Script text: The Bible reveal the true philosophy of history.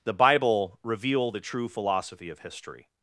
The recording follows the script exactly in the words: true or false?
true